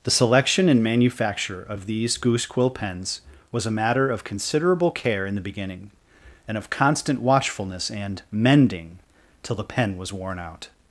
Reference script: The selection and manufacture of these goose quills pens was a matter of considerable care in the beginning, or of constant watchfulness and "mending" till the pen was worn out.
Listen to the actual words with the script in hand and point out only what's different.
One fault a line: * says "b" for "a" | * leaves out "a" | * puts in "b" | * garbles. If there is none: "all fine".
* says "quill" for "quills"
* says "and" for "or"